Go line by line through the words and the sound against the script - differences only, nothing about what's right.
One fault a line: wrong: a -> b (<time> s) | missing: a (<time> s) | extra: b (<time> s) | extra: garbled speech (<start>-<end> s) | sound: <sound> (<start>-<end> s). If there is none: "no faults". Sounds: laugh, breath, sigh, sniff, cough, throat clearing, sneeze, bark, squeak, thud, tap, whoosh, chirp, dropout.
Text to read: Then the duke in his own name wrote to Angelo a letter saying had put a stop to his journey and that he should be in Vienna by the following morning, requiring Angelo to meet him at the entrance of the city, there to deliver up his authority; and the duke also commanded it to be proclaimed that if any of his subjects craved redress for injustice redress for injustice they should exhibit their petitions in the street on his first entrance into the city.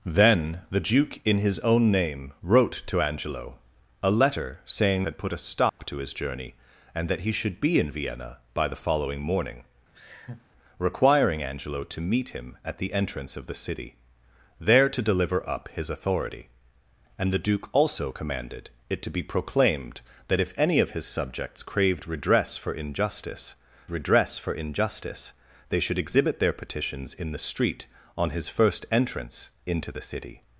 sound: dropout (5.7-5.8 s)
sound: laugh (9.9-10.5 s)